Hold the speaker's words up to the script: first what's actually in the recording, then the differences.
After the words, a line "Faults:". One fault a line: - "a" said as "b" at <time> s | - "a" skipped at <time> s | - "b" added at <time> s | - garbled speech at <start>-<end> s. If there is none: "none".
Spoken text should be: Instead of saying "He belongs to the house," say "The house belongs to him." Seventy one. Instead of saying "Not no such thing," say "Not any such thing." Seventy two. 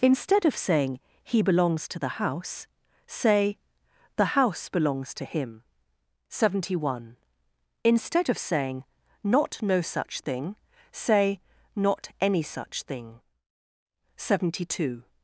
Instead of saying "He belongs to the house," say "The house belongs to him." Seventy one. Instead of saying "Not no such thing," say "Not any such thing." Seventy two.
Faults:
none